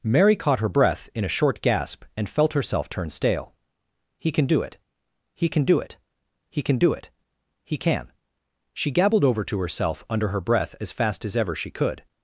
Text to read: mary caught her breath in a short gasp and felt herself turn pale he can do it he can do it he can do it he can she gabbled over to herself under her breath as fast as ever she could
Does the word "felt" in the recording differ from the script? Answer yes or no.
no